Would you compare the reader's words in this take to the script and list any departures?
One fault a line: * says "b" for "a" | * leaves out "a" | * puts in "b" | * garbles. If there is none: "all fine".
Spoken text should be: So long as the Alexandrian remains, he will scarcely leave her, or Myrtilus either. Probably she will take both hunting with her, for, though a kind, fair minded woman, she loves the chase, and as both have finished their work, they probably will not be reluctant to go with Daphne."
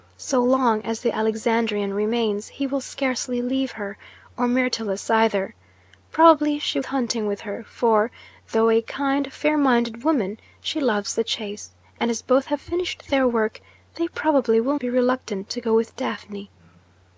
* leaves out "will take both"
* leaves out "not"